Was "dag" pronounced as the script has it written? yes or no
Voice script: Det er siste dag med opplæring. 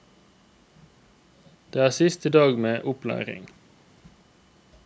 yes